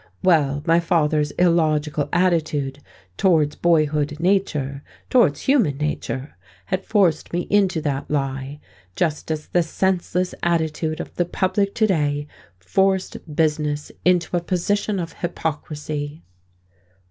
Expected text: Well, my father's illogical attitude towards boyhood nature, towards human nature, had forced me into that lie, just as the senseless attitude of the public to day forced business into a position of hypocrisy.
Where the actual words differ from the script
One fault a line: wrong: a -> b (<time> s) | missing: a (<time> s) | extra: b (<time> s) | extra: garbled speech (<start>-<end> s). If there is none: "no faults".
no faults